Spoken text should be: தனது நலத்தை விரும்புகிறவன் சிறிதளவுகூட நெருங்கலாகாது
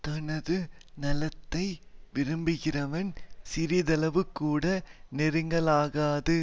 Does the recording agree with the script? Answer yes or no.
yes